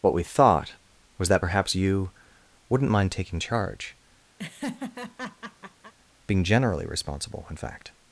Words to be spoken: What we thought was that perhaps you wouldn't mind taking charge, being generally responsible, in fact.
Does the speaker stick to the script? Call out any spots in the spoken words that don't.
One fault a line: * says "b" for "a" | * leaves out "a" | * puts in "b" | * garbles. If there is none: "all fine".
all fine